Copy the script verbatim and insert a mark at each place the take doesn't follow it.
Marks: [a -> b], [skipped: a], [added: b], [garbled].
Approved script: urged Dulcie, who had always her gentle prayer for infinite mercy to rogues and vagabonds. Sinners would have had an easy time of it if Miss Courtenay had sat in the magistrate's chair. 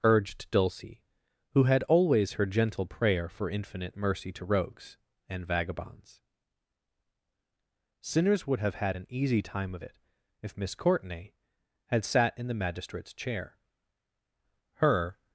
urged Dulcie, who had always her gentle prayer for infinite mercy to rogues and vagabonds. Sinners would have had an easy time of it if Miss Courtenay had sat in the magistrate's chair. [added: Her]